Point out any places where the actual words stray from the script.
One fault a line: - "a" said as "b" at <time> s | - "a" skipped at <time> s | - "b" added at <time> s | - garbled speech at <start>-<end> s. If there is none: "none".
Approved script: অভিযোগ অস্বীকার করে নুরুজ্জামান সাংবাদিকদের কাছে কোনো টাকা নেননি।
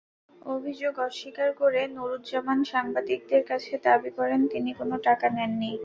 - "দাবি করেন তিনি" added at 3.9 s